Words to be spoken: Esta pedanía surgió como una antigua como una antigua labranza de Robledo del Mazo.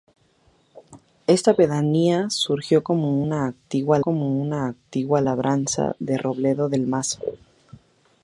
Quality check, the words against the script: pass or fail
pass